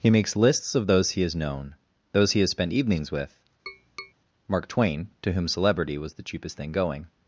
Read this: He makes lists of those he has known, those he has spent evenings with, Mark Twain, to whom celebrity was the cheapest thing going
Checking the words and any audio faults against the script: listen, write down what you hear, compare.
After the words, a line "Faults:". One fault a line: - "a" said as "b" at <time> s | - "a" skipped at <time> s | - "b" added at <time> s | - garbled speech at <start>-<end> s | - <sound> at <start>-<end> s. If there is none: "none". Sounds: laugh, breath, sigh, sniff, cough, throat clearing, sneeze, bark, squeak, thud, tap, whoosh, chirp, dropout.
He makes lists of those he has known, those he has spent evenings with, Mark Twain, to whom celebrity was the cheapest thing going
Faults:
- tap at 3.7-4.1 s